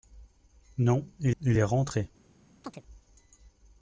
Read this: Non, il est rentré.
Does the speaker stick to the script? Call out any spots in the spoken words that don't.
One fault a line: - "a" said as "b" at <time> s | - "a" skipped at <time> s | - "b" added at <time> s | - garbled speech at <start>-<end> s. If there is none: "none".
- "il" added at 1.4 s